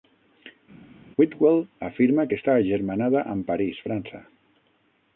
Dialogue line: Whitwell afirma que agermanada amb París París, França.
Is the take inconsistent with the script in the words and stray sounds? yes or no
yes